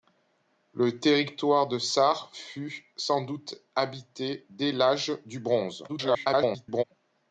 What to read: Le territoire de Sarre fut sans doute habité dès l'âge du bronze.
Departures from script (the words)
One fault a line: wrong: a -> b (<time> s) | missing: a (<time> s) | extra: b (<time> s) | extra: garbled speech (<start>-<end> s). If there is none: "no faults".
extra: garbled speech (5.9-6.8 s)